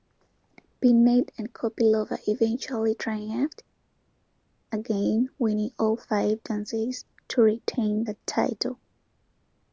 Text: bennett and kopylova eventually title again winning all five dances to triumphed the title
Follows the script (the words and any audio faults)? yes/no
no